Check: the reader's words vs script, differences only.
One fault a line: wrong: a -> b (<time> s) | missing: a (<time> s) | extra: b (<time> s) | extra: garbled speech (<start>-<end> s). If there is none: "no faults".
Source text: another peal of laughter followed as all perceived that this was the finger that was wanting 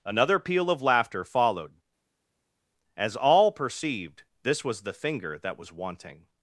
missing: that (4.2 s)